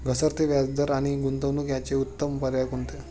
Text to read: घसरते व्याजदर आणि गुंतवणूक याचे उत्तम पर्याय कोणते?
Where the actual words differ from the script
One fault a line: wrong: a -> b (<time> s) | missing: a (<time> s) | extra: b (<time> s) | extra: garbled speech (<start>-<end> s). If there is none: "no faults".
no faults